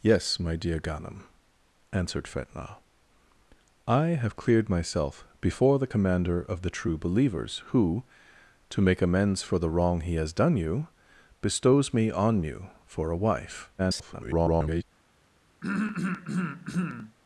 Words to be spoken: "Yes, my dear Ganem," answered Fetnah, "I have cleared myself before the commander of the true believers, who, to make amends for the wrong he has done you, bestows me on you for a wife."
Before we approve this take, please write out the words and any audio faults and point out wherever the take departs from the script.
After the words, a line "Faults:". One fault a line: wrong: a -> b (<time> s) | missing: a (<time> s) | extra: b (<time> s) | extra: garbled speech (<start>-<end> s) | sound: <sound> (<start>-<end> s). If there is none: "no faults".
"Yes, my dear Ganem," answered Fetnah, "I have cleared myself before the commander of the true believers, who, to make amends for the wrong he has done you, bestows me on you for a wife." [garbled]
Faults:
extra: garbled speech (13.8-14.8 s)
sound: throat clearing (15.6-17.2 s)